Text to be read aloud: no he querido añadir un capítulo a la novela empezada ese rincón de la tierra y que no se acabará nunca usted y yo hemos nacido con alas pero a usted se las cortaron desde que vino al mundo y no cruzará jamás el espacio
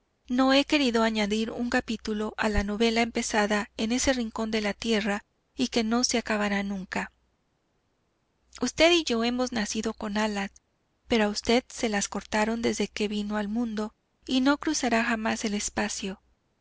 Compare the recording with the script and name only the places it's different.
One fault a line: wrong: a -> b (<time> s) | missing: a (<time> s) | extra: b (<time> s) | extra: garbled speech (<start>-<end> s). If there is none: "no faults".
extra: en (3.8 s)